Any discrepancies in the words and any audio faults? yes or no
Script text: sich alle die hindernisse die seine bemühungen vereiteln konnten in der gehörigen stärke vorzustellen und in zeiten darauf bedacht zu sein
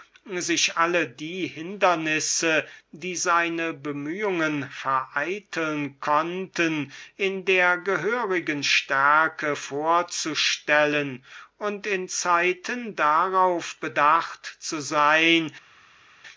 no